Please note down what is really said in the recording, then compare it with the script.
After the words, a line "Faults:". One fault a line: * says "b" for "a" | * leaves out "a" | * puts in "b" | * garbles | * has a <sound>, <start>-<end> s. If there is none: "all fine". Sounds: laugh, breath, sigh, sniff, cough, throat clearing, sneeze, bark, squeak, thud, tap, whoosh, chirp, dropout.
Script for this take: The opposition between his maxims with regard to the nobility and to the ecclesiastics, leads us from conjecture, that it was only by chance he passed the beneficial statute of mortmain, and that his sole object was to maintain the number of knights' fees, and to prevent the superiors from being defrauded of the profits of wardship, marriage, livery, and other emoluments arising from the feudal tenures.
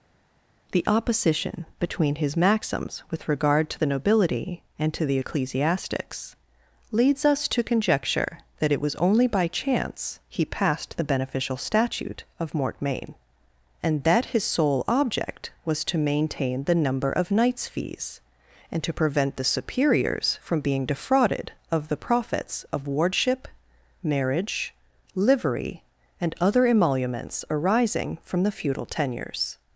The opposition between his maxims with regard to the nobility and to the ecclesiastics, leads us to conjecture, that it was only by chance he passed the beneficial statute of mortmain, and that his sole object was to maintain the number of knights' fees, and to prevent the superiors from being defrauded of the profits of wardship, marriage, livery, and other emoluments arising from the feudal tenures.
Faults:
* says "to" for "from"